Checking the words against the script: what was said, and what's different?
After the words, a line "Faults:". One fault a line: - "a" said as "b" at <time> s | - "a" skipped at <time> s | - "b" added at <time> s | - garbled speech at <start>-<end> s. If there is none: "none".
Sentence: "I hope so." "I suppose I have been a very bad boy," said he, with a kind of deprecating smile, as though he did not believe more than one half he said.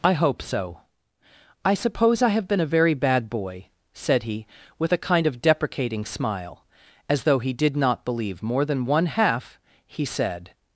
"I hope so." "I suppose I have been a very bad boy," said he, with a kind of deprecating smile, as though he did not believe more than one half he said.
Faults:
none